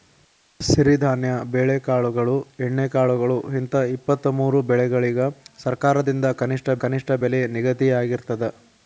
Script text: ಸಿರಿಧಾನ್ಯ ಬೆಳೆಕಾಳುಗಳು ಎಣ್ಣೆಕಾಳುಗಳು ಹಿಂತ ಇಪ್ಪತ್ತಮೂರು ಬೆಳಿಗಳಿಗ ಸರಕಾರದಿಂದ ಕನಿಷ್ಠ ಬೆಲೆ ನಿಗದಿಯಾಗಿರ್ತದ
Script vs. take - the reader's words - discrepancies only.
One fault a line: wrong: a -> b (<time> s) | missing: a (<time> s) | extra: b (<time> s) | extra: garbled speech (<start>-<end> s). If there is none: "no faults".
extra: ಕನಿಷ್ಠ (6.8 s)